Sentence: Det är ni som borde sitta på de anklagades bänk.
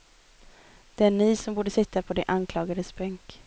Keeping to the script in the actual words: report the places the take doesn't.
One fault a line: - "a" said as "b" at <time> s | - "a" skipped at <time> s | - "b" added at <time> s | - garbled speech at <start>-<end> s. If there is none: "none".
none